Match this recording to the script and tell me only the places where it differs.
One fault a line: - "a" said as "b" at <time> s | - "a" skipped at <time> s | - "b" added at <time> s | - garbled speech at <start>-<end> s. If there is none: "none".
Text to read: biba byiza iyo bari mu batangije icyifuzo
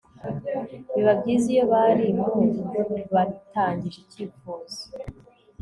none